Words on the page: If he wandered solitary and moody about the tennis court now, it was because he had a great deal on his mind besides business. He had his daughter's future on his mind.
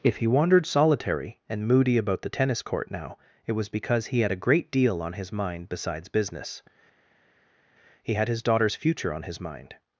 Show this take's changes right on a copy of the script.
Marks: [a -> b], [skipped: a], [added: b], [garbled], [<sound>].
If he wandered solitary and moody about the tennis court now, it was because he had a great deal on his mind besides business. He had his daughter's future on his mind.